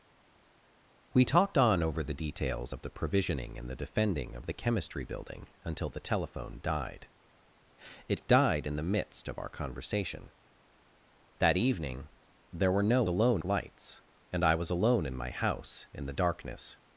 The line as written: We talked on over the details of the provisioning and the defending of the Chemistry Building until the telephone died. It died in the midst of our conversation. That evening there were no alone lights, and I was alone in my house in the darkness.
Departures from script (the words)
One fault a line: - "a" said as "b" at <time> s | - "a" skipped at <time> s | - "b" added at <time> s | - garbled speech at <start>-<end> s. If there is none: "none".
none